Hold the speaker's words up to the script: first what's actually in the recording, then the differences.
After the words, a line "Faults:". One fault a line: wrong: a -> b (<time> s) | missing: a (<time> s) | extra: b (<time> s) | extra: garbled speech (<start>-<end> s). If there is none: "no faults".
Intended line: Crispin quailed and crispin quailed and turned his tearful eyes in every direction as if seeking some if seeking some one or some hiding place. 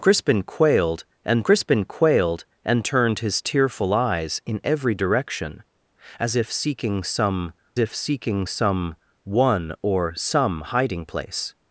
Crispin quailed and crispin quailed and turned his tearful eyes in every direction as if seeking some if seeking some one or some hiding place.
Faults:
no faults